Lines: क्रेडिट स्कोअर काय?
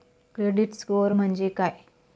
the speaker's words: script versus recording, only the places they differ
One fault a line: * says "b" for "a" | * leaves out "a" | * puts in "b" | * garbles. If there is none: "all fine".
* puts in "म्हणजे"